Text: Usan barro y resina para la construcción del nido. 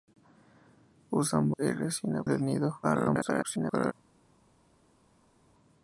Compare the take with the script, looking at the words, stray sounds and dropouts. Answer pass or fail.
fail